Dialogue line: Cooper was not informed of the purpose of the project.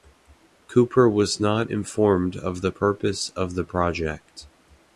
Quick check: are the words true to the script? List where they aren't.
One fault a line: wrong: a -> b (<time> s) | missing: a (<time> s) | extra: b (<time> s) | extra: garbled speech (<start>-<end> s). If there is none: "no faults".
no faults